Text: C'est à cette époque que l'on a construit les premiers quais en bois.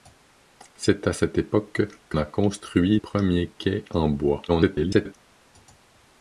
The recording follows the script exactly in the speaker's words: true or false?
false